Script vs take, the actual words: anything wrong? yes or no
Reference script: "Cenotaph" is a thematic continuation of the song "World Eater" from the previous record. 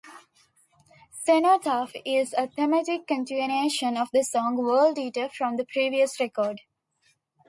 no